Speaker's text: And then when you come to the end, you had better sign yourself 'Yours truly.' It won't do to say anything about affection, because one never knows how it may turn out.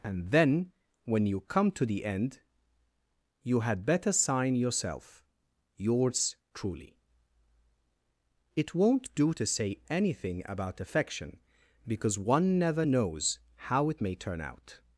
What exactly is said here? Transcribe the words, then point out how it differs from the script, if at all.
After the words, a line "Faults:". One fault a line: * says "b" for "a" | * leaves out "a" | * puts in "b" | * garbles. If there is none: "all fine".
And then when you come to the end, you had better sign yourself 'Yours truly.' It won't do to say anything about affection, because one never knows how it may turn out.
Faults:
all fine